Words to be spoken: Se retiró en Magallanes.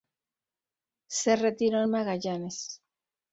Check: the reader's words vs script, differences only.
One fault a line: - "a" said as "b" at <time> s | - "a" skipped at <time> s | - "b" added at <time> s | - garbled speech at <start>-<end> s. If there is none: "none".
none